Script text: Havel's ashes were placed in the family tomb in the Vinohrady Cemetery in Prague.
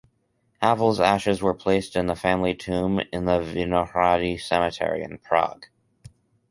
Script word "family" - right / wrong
right